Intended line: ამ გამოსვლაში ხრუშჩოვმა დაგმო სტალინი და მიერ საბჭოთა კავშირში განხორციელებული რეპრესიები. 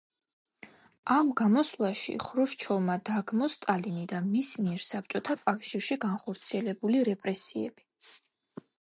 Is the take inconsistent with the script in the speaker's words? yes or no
yes